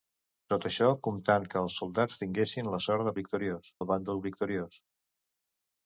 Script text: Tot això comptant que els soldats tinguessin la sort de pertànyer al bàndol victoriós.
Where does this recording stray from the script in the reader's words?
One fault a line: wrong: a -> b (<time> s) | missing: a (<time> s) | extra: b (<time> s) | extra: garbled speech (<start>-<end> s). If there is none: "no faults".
wrong: pertànyer -> victoriós (3.2 s)